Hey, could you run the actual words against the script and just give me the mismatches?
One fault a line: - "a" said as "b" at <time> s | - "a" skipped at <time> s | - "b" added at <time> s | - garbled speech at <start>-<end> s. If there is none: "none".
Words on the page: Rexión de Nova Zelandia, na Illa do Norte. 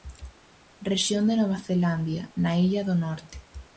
none